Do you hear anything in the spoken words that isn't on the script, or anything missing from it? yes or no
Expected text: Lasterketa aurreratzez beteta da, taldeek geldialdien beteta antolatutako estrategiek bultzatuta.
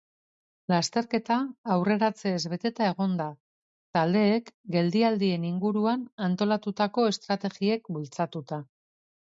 yes